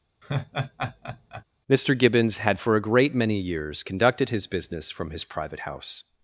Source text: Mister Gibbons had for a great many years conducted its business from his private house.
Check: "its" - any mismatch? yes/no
yes